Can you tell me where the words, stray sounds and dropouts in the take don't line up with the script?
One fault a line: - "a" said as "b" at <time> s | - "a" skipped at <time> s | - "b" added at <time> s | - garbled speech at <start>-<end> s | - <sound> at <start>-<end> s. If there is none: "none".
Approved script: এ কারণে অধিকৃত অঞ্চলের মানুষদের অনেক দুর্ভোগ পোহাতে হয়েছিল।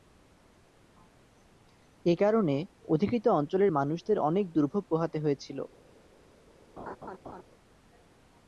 - laugh at 6.8-7.4 s